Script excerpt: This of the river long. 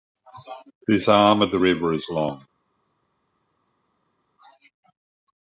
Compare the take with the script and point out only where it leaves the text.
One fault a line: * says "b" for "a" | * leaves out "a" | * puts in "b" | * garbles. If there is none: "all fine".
* puts in "arm"
* puts in "is"